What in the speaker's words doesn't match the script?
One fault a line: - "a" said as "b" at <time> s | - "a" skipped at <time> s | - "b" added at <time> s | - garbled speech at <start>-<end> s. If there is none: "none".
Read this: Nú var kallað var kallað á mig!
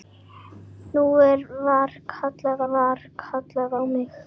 none